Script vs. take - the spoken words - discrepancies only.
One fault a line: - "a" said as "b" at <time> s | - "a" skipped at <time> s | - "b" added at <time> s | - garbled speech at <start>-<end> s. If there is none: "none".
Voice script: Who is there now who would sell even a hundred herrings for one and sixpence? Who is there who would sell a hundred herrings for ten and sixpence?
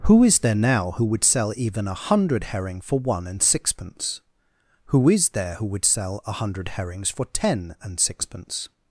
- "herrings" said as "herring" at 2.5 s